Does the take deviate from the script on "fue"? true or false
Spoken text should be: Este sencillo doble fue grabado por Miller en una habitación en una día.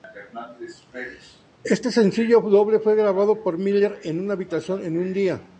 false